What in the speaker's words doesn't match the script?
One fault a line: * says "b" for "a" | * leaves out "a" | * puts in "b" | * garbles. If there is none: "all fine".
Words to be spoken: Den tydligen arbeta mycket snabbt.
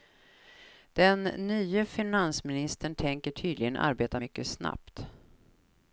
* puts in "nye finansministern tänker"